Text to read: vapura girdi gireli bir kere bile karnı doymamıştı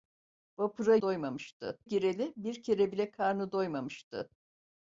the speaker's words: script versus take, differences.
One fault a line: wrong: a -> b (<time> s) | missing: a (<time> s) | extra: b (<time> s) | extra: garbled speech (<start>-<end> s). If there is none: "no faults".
wrong: girdi -> doymamıştı (1.0 s)